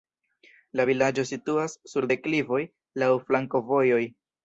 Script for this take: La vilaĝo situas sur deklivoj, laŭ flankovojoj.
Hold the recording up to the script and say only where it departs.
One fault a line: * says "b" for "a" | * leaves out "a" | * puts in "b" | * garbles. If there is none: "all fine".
all fine